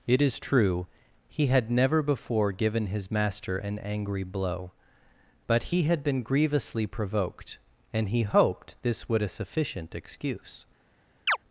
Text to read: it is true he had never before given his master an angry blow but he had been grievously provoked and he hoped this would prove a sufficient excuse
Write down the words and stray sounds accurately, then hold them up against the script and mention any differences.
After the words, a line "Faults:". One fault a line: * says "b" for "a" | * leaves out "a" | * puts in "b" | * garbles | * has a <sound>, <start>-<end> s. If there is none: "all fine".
it is true he had never before given his master an angry blow but he had been grievously provoked and he hoped this would a sufficient excuse
Faults:
* leaves out "prove"
* has a chirp, 11.3-11.4 s